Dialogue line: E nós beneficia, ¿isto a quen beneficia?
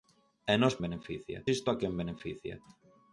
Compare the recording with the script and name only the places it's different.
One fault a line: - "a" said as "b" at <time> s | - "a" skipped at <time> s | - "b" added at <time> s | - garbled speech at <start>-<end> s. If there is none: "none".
none